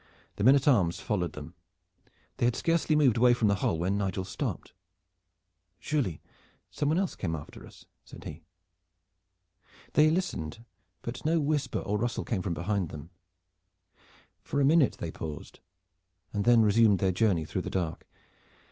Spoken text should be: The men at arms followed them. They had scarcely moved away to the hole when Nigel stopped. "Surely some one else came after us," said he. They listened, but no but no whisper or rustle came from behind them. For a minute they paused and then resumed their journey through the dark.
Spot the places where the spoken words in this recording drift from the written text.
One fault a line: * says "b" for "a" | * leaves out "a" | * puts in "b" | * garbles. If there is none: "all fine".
* says "from" for "to"
* leaves out "but no"